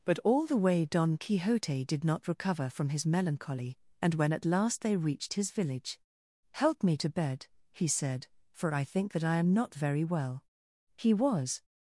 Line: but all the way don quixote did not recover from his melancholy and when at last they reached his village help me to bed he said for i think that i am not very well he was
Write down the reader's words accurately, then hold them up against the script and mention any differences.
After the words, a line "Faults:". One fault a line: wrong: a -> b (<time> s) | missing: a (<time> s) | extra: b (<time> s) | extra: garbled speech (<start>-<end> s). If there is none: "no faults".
but all the way don quixote did not recover from his melancholy and when at last they reached his village help me to bed he said for i think that i am not very well he was
Faults:
no faults